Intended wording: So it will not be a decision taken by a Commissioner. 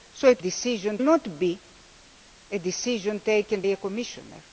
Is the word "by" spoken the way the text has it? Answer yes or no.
no